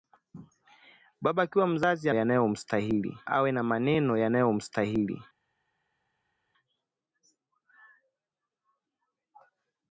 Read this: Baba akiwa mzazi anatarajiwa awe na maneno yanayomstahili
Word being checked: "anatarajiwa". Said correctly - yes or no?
no